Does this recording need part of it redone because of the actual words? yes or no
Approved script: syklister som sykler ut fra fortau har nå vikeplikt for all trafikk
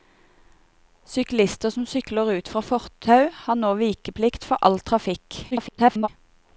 yes